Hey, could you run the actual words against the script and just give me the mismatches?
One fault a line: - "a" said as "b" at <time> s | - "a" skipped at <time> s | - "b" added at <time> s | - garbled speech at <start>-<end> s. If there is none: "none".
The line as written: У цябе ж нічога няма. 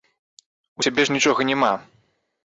none